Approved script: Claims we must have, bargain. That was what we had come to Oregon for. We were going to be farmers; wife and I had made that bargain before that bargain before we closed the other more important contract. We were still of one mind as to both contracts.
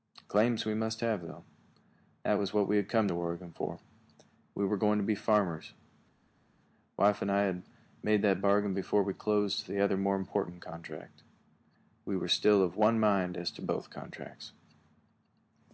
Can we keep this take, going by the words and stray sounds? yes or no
no